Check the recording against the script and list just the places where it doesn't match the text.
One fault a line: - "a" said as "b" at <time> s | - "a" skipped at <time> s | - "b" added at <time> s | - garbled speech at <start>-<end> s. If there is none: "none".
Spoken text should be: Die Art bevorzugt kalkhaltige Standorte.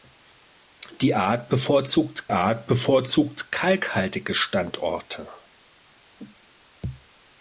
- "Art bevorzugt" added at 2.3 s